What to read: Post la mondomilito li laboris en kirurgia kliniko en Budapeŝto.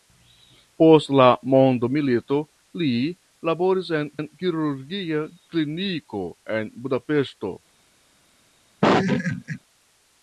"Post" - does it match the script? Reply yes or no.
yes